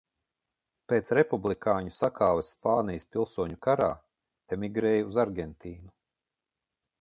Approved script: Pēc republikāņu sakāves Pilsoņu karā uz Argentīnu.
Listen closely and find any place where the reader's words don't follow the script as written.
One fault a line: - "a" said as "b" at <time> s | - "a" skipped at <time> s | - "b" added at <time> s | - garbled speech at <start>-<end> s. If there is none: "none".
- "Spānijas" added at 2.5 s
- "emigrēja" added at 4.6 s